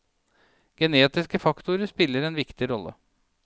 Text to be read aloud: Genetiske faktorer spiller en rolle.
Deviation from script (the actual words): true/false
true